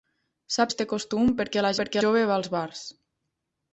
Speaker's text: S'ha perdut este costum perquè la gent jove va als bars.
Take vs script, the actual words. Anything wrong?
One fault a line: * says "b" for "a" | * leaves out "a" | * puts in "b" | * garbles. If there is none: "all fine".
* leaves out "perdut"
* says "perquè" for "gent"